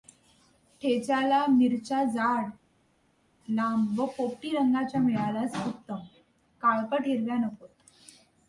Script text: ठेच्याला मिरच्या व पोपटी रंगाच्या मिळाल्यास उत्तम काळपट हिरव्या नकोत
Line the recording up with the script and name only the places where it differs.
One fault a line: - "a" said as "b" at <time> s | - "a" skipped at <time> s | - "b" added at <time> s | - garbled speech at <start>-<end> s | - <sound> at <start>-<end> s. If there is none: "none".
- "जाड लांब" added at 2.0 s